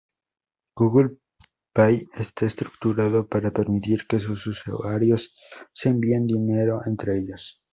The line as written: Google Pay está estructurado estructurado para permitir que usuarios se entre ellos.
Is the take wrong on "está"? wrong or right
right